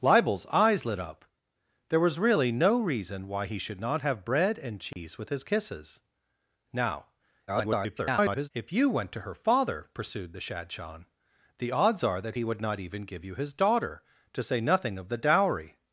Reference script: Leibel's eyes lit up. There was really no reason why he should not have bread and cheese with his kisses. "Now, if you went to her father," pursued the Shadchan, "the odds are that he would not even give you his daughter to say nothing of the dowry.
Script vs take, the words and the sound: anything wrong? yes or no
yes